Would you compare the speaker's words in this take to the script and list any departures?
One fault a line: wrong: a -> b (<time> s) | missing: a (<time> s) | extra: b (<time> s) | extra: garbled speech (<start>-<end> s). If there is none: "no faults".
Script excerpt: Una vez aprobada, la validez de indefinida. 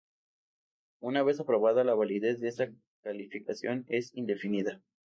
extra: esta calificación es (2.5 s)